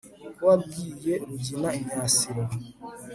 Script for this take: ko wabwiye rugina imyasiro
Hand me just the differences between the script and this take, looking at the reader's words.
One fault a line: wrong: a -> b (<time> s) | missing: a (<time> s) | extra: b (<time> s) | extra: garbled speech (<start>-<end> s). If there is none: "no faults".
no faults